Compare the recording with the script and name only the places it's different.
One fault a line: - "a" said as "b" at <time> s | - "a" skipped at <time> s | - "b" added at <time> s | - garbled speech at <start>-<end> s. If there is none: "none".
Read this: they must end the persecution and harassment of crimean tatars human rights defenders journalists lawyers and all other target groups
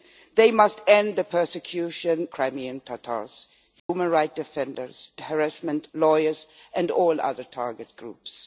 - "and harassment of" skipped at 2.3 s
- "journalists" said as "harassment" at 5.2 s